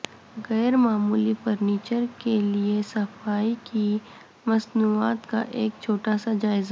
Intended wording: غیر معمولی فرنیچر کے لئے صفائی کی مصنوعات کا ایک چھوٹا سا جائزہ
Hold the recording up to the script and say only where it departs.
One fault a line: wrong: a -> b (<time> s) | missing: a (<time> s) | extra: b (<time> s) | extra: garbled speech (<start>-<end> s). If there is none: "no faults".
no faults